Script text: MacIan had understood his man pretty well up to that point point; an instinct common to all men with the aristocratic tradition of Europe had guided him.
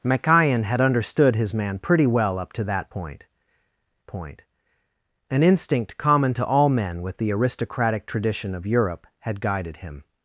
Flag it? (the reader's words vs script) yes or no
no